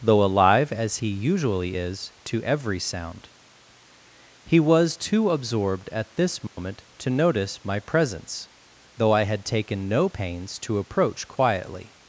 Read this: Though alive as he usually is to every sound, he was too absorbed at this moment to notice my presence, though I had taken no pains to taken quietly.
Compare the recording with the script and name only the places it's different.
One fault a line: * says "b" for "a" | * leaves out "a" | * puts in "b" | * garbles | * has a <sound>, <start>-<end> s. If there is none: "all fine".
* has a dropout, 6.5-6.6 s
* says "approach" for "taken"